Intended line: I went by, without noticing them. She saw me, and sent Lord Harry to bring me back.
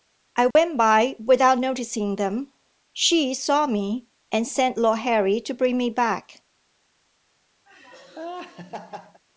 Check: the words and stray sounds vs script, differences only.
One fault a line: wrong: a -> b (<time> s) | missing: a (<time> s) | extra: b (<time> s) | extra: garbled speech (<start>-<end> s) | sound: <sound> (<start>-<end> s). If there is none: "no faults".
sound: dropout (0.5-0.6 s)
sound: laugh (7.7-9.2 s)